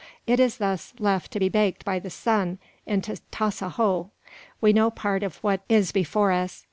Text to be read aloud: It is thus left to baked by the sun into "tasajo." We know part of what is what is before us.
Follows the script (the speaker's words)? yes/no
no